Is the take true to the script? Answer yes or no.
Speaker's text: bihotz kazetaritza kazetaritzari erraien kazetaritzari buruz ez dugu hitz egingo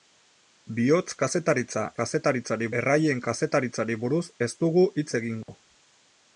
yes